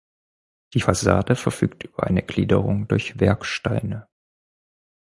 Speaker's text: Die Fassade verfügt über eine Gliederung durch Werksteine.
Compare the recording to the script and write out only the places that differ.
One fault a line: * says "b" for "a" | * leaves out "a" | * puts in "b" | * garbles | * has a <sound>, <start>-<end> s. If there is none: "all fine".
all fine